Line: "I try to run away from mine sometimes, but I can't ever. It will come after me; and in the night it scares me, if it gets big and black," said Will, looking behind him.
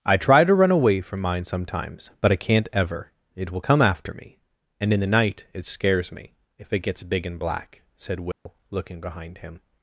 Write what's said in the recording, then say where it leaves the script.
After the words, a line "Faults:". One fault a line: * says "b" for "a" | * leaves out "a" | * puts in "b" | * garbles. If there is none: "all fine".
"I try to run away from mine sometimes, but I can't ever. It will come after me; and in the night it scares me, if it gets big and black," said Will, looking behind him.
Faults:
all fine